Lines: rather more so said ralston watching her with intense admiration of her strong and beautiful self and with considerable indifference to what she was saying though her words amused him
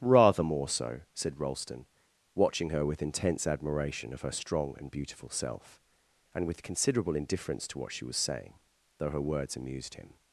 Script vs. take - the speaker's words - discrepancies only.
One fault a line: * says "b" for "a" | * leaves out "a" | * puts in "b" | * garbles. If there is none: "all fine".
all fine